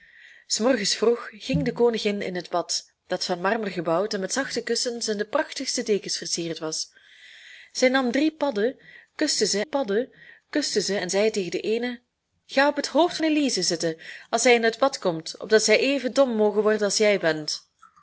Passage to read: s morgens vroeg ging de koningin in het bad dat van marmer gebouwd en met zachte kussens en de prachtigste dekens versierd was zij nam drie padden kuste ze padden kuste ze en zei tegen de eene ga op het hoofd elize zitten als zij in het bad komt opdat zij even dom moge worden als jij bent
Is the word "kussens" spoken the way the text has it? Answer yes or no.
yes